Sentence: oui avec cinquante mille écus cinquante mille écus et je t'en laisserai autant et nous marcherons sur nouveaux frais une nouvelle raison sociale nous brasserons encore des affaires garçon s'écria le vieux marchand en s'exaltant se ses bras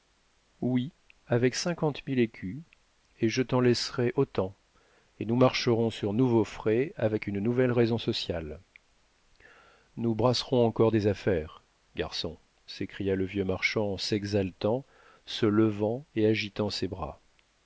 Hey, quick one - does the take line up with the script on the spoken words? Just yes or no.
no